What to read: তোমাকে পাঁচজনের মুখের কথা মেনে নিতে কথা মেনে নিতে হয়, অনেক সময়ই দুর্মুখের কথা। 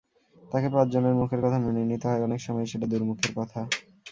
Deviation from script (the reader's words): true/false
true